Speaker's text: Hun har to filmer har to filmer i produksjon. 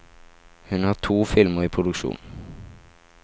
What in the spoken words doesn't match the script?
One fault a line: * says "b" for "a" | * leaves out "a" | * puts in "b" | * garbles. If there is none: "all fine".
* leaves out "har to filmer"